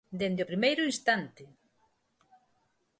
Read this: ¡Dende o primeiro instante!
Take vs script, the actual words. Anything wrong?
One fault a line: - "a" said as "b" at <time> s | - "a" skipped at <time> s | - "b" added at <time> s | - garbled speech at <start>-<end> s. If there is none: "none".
none